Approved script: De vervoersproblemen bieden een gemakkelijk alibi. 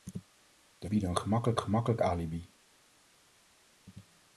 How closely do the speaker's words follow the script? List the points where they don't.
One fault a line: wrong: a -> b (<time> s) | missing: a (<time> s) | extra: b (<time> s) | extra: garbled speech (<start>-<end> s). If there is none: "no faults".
missing: vervoersproblemen (0.9 s)
extra: gemakkelijk (1.6 s)